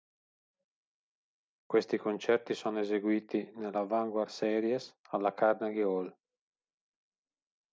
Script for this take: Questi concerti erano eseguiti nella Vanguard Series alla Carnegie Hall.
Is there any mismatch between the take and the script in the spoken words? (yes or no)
yes